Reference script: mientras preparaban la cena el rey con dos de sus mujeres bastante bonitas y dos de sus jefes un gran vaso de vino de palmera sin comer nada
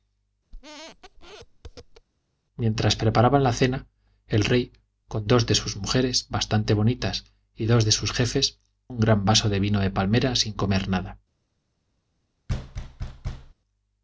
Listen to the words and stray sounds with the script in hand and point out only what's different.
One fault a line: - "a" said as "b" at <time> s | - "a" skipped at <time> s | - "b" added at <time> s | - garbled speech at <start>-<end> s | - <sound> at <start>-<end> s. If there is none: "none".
- squeak at 0.5-2.1 s
- thud at 12.5-13.5 s